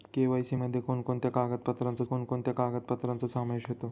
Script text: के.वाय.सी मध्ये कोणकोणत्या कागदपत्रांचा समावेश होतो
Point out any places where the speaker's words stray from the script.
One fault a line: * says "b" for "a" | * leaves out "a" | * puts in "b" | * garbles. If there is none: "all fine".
* puts in "कोणकोणत्या कागदपत्रांचा"